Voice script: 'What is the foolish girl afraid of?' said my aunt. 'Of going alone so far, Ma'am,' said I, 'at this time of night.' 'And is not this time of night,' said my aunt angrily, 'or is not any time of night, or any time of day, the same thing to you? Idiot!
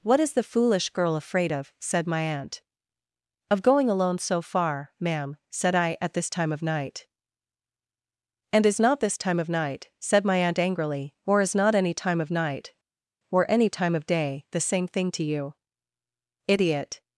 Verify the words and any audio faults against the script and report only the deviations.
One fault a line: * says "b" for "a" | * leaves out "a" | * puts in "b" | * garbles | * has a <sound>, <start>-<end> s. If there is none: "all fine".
all fine